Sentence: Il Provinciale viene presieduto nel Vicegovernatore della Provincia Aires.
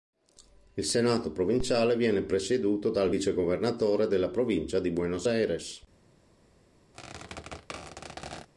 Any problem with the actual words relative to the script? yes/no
yes